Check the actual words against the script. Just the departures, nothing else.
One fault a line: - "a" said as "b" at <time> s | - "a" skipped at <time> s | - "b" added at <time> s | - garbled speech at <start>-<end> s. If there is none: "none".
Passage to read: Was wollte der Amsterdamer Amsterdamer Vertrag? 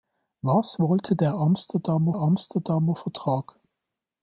none